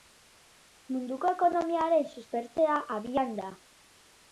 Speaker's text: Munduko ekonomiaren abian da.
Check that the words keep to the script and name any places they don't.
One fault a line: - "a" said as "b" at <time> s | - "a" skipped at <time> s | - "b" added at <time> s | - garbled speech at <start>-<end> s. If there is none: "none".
- "suspertzea" added at 2.2 s